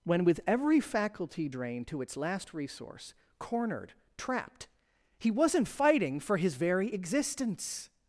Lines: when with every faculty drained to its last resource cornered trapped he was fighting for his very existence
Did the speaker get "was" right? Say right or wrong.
wrong